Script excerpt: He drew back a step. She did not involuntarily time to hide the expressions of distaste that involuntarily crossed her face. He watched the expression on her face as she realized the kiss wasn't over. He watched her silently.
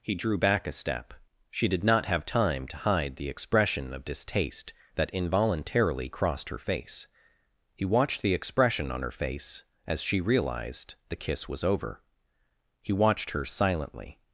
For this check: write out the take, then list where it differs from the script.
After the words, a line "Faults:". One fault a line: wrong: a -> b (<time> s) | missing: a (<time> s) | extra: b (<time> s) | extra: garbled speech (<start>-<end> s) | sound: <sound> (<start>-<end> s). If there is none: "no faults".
He drew back a step. She did not have time to hide the expression of distaste that involuntarily crossed her face. He watched the expression on her face as she realized the kiss was over. He watched her silently.
Faults:
wrong: involuntarily -> have (2.1 s)
wrong: expressions -> expression (3.3 s)
wrong: wasn't -> was (11.5 s)